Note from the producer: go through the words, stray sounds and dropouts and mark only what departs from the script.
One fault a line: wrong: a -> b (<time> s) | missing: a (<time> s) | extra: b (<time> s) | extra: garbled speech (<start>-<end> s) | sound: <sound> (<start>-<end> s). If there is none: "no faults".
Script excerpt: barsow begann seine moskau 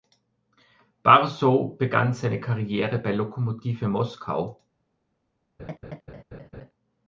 extra: karriere bei lokomotive (2.4 s)
sound: laugh (5.6-6.7 s)